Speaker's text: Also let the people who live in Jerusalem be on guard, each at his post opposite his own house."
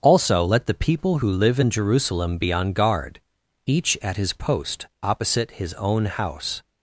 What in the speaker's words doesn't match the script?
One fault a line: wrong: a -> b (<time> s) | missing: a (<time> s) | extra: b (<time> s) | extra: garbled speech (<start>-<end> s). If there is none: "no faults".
no faults